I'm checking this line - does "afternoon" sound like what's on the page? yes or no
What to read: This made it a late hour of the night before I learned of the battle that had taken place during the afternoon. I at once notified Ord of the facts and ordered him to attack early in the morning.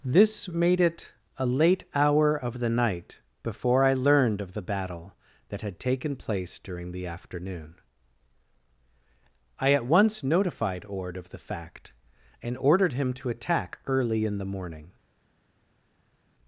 yes